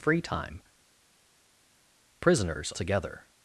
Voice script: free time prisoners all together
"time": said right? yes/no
yes